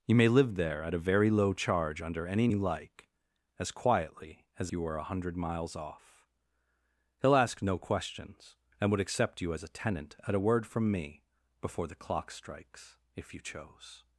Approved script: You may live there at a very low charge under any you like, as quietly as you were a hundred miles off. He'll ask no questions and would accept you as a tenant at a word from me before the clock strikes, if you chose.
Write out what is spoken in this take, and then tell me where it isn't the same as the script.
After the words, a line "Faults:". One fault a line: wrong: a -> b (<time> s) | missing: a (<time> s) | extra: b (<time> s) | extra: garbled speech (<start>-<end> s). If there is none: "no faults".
You may live there at a very low charge under any you like, as quietly as you were a hundred miles off. He'll ask no questions and would accept you as a tenant at a word from me before the clock strikes, if you chose.
Faults:
no faults